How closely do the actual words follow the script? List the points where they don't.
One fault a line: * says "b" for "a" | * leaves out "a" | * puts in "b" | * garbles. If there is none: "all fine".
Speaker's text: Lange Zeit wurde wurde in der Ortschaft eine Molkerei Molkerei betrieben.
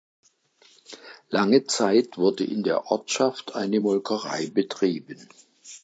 * leaves out "wurde"
* leaves out "Molkerei"